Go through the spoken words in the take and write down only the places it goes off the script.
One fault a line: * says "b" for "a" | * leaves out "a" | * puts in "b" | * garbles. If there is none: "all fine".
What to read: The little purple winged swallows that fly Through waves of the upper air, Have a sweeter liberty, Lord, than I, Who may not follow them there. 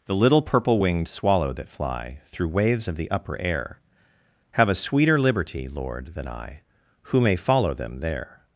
* says "swallow" for "swallows"
* leaves out "not"